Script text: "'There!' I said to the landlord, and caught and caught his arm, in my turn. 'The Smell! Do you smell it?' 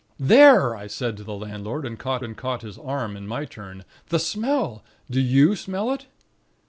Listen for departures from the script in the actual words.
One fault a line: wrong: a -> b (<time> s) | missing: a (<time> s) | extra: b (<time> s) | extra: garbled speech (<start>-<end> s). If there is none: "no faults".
no faults